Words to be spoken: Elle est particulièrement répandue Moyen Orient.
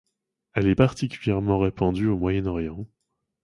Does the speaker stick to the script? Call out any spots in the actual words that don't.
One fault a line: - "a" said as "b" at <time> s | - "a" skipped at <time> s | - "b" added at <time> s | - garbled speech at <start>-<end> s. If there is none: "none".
- "au" added at 2.1 s